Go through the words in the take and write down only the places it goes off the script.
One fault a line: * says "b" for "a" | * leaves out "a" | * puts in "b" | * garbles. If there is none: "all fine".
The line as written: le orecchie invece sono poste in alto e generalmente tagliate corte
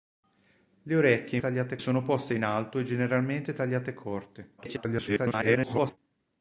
* says "tagliate" for "invece"
* garbles